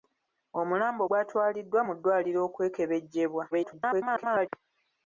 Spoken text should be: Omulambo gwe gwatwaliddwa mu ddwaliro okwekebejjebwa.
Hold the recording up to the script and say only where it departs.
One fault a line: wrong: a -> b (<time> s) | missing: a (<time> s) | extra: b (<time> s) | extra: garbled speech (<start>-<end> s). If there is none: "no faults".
missing: gwe (1.0 s)
extra: garbled speech (3.5-4.5 s)